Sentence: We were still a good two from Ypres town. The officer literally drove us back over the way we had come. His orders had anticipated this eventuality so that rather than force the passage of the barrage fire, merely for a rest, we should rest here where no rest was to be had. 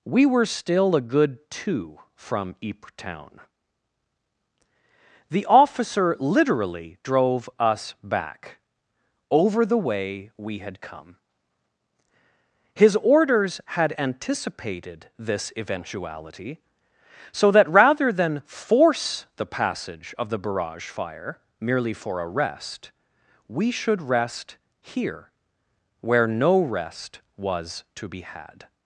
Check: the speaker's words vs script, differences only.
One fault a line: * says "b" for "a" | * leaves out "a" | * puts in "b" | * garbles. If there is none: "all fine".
all fine